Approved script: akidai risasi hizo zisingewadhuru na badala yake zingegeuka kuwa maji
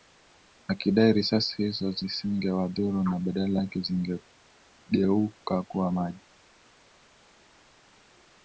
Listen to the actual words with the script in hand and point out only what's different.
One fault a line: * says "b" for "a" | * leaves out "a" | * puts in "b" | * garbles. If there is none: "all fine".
all fine